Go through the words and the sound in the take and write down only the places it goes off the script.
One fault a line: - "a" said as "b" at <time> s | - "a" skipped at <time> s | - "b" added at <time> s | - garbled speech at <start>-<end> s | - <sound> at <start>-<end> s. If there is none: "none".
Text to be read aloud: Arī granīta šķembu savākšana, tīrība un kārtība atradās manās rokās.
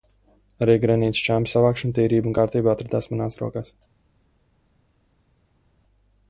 none